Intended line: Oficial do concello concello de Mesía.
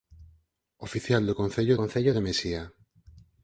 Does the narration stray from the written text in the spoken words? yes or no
no